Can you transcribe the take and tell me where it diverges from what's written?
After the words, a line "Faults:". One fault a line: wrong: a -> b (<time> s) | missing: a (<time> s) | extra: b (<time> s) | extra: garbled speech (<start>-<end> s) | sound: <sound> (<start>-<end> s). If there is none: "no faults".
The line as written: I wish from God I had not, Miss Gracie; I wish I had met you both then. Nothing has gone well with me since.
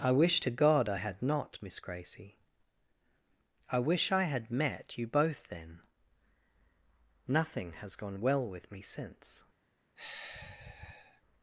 I wish to God I had not, Miss Gracie; I wish I had met you both then. Nothing has gone well with me since.
Faults:
wrong: from -> to (0.4 s)
sound: sigh (10.0-11.2 s)